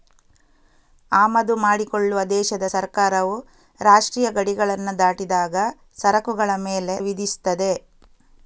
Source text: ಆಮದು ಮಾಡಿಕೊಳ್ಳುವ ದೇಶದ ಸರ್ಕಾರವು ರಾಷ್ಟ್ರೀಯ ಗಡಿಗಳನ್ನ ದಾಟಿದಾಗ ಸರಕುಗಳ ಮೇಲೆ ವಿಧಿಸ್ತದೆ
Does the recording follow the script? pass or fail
pass